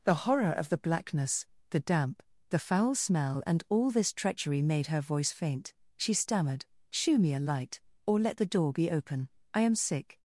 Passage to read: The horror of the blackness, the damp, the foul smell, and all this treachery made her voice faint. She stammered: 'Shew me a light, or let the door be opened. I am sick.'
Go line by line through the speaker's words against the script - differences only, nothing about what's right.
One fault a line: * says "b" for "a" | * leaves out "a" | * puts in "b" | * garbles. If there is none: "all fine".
* says "open" for "opened"